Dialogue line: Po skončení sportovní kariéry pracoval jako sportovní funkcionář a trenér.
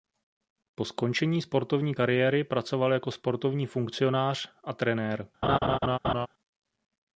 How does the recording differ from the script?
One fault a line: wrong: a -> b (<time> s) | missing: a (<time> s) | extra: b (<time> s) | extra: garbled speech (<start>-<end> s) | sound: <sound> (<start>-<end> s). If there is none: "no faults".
sound: laugh (5.4-6.3 s)